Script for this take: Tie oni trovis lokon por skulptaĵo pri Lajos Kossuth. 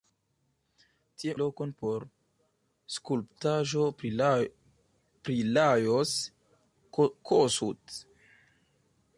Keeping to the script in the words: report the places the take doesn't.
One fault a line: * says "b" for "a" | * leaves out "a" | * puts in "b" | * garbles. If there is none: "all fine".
* leaves out "oni trovis"